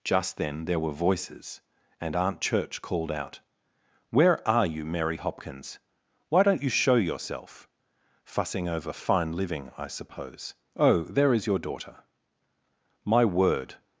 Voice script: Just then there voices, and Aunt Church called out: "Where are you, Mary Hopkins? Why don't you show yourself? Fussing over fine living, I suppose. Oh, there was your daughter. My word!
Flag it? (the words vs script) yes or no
yes